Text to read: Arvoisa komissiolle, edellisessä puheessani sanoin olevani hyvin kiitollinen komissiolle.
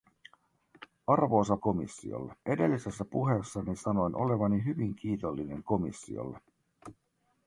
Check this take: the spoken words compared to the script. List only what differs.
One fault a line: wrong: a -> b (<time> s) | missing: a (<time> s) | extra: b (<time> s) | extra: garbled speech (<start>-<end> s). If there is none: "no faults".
no faults